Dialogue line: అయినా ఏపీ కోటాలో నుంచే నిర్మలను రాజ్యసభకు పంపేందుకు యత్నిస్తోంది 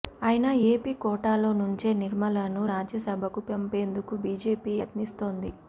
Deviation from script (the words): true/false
true